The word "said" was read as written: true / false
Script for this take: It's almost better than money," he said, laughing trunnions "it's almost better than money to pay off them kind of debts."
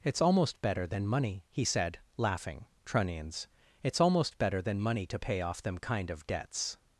true